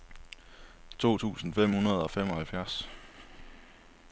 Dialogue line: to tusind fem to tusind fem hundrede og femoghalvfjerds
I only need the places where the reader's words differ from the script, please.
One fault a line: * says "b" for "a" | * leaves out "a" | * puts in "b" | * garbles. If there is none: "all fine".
* leaves out "to tusind fem"